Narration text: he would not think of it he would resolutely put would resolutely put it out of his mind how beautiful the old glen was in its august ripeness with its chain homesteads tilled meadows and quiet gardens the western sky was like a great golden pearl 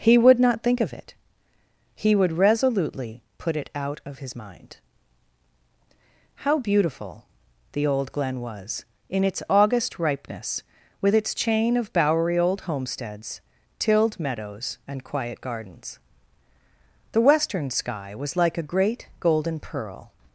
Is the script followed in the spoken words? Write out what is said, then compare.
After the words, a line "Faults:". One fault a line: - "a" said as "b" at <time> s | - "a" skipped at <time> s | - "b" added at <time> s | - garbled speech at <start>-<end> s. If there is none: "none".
he would not think of it he would resolutely put it out of his mind how beautiful the old glen was in its august ripeness with its chain of bowery old homesteads tilled meadows and quiet gardens the western sky was like a great golden pearl
Faults:
- "would resolutely put" skipped at 3.5 s
- "of bowery old" added at 11.8 s